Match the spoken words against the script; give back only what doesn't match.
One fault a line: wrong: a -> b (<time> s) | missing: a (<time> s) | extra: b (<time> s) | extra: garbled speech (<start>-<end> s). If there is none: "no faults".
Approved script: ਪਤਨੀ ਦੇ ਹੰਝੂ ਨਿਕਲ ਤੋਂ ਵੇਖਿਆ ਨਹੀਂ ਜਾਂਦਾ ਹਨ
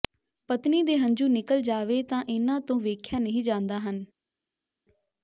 extra: ਜਾਵੇ ਤਾਂ ਇਨ੍ਹਾਂ (1.6 s)